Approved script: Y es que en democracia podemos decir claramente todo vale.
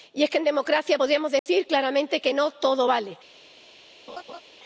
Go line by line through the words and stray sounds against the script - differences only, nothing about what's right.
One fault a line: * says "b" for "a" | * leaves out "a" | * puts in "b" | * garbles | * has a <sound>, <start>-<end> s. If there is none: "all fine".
* has a dropout, 1.4-1.5 s
* puts in "que no"
* has a laugh, 4.1-4.4 s